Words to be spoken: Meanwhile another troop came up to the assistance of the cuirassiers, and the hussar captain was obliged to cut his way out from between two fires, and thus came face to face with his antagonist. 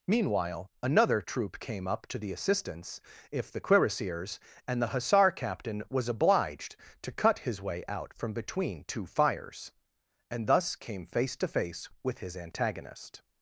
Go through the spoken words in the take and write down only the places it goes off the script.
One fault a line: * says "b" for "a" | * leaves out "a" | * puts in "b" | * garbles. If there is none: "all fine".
* says "if" for "of"